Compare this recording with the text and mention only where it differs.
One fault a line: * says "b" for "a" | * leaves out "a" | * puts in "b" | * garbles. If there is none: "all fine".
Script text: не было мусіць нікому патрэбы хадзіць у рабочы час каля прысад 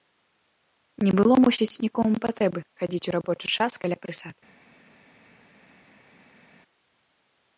all fine